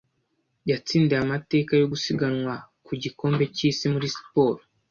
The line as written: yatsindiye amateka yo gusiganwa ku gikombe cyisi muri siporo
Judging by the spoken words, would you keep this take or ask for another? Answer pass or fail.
pass